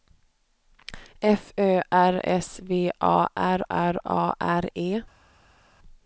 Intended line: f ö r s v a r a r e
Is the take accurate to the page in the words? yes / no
no